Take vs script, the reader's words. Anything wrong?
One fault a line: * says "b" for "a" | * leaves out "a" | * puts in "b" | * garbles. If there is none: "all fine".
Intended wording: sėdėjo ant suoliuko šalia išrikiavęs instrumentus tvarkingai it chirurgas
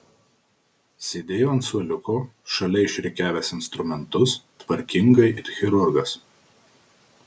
all fine